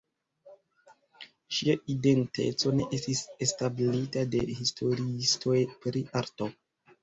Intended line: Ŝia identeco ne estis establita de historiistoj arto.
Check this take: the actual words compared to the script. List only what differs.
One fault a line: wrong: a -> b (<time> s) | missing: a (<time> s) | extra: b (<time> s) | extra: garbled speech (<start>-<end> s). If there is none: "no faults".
extra: pri (5.9 s)